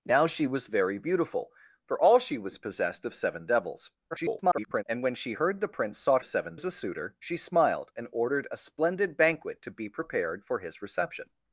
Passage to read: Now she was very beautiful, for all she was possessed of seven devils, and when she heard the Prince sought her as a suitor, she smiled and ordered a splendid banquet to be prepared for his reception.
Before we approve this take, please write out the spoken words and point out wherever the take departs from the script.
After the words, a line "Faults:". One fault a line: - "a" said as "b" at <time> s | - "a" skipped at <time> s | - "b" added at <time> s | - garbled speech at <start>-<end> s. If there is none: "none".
Now she was very beautiful, for all she was possessed of seven devils, [garbled] and when she heard the Prince sought seven as a suitor, she smiled and ordered a splendid banquet to be prepared for his reception.
Faults:
- garbled speech at 4.1-4.8 s
- "her" said as "seven" at 6.2 s